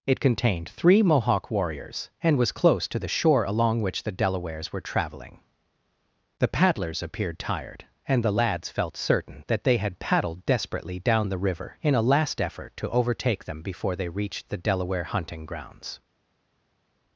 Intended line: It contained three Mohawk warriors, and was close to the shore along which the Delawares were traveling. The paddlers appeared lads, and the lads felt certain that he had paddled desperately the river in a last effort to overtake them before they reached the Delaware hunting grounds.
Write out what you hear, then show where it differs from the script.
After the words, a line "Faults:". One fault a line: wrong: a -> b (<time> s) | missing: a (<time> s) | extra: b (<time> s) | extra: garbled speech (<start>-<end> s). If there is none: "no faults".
It contained three Mohawk warriors, and was close to the shore along which the Delawares were traveling. The paddlers appeared tired, and the lads felt certain that they had paddled desperately down the river in a last effort to overtake them before they reached the Delaware hunting grounds.
Faults:
wrong: lads -> tired (7.4 s)
wrong: he -> they (9.6 s)
extra: down (11.0 s)